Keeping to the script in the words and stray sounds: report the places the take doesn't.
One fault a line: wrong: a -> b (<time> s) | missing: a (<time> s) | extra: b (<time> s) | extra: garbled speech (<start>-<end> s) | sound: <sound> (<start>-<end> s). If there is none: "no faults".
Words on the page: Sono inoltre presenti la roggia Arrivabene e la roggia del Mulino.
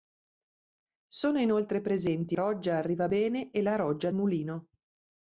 missing: la (2.4 s)
missing: del (4.1 s)